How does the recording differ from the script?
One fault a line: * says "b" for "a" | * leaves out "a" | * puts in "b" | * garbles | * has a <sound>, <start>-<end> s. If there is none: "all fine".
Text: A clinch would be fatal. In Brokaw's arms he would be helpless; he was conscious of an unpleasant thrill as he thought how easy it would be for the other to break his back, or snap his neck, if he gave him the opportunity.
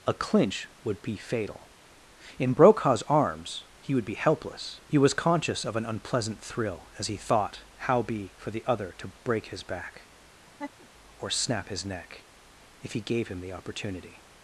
* leaves out "easy it would"
* has a laugh, 10.5-10.9 s